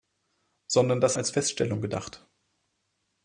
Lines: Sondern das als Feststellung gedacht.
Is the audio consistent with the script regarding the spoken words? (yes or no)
yes